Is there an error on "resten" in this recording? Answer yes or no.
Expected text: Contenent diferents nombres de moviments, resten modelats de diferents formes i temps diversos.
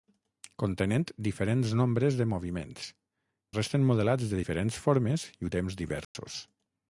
no